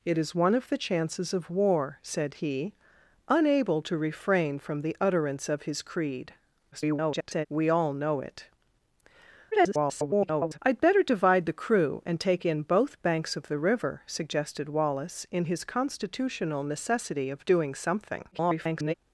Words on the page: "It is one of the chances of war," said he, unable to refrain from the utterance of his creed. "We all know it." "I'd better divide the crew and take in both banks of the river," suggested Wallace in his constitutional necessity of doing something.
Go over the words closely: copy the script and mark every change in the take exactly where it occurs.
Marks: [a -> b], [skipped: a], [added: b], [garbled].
"It is one of the chances of war," said he, unable to refrain from the utterance of his creed. [garbled] "We all know it." [garbled] "I'd better divide the crew and take in both banks of the river," suggested Wallace in his constitutional necessity of doing something. [garbled]